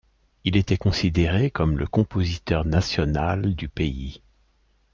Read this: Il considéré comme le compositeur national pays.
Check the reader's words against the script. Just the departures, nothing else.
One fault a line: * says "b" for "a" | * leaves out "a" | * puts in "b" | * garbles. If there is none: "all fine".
* puts in "était"
* puts in "du"